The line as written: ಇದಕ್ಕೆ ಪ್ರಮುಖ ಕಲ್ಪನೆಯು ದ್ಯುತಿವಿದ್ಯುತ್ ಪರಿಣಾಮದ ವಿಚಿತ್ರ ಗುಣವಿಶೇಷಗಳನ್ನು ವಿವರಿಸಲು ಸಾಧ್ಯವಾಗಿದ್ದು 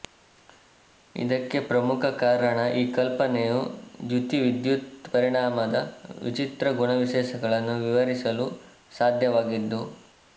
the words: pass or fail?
fail